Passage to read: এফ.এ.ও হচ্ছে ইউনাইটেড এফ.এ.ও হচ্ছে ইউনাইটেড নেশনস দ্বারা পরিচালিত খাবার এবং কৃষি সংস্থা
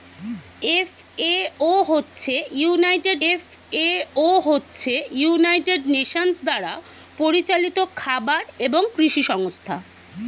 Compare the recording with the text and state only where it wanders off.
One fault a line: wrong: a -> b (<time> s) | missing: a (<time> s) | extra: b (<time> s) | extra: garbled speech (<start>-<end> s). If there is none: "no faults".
no faults